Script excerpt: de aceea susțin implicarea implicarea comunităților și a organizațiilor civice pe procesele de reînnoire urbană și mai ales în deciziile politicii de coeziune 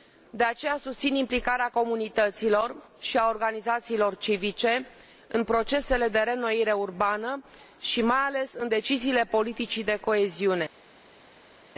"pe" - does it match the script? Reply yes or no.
no